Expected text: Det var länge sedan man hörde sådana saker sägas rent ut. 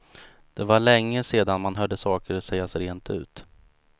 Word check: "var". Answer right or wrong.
right